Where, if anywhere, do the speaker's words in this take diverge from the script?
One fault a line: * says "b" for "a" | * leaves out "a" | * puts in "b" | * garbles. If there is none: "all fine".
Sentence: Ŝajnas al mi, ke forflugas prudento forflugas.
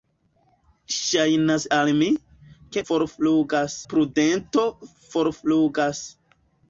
all fine